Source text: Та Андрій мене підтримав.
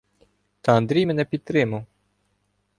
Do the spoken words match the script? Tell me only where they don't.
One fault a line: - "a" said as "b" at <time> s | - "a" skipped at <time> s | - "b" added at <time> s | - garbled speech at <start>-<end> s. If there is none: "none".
none